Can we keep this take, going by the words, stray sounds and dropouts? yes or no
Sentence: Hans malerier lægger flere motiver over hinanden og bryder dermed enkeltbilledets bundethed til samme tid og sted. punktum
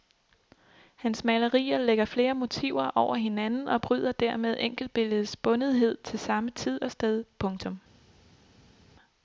yes